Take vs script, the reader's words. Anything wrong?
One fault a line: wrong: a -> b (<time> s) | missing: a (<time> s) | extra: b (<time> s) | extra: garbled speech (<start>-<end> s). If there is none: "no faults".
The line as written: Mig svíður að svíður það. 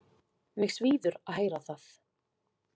wrong: svíður -> heyra (1.4 s)